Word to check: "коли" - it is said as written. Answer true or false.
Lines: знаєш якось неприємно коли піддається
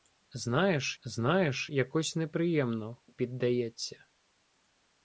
false